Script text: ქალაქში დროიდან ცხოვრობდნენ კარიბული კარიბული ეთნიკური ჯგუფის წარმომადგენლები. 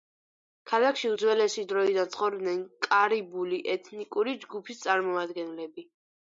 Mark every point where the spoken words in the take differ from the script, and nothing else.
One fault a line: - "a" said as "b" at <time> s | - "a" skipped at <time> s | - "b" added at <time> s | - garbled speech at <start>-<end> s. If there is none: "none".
- "უძველესი" added at 1.1 s
- "კარიბული" skipped at 3.6 s